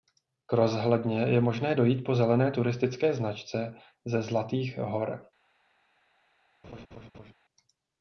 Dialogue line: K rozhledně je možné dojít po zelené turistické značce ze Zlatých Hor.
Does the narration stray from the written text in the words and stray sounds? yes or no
yes